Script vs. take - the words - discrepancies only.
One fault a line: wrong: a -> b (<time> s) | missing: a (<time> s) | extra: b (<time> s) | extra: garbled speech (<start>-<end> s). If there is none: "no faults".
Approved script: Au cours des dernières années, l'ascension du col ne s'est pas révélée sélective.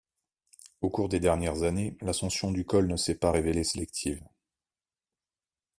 no faults